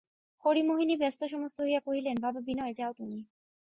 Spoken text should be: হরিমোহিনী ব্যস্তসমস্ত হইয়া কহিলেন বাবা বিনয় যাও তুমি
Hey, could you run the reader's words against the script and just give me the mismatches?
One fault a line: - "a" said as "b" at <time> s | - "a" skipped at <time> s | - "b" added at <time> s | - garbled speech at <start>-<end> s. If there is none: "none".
none